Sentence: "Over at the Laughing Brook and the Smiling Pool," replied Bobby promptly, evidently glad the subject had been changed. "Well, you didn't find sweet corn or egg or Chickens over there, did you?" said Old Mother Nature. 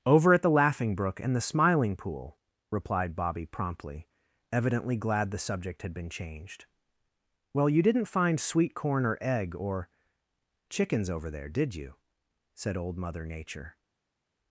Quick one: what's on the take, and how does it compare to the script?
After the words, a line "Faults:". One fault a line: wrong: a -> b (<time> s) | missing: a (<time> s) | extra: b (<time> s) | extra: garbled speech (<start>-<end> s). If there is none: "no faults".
"Over at the Laughing Brook and the Smiling Pool," replied Bobby promptly, evidently glad the subject had been changed. "Well, you didn't find sweet corn or egg or Chickens over there, did you?" said Old Mother Nature.
Faults:
no faults